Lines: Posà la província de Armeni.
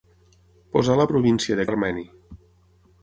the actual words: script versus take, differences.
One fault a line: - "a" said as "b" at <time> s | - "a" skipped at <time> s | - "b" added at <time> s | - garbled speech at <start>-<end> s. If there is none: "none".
none